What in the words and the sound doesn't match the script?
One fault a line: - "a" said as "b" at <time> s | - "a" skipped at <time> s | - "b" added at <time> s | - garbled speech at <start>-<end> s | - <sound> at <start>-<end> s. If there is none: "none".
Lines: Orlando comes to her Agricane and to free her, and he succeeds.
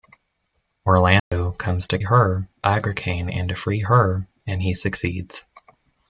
- dropout at 1.2-1.3 s